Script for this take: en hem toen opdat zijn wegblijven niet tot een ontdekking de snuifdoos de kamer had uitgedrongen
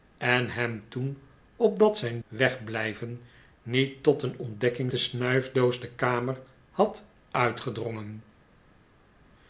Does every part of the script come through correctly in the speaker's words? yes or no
yes